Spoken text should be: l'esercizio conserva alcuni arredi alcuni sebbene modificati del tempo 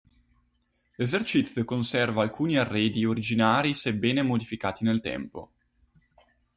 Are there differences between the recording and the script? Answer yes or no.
yes